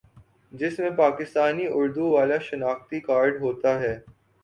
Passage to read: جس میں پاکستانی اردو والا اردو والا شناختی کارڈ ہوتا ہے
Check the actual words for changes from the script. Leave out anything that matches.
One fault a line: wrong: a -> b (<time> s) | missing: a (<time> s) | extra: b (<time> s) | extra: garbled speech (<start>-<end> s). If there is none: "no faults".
missing: اردو والا (2.4 s)